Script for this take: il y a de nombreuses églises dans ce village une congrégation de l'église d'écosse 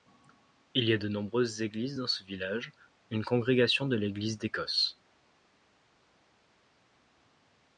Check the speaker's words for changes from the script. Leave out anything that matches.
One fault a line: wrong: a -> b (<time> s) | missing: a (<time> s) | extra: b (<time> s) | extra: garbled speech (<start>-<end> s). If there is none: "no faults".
no faults